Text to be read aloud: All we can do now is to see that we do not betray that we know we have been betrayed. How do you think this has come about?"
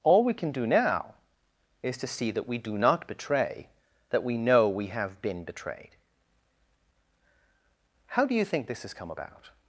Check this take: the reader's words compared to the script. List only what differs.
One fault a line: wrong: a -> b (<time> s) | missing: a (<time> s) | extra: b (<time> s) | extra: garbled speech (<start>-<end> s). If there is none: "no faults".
no faults